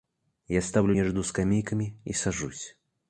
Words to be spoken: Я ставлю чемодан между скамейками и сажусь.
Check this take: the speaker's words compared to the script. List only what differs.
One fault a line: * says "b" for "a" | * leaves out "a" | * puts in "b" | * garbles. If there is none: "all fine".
* leaves out "чемодан"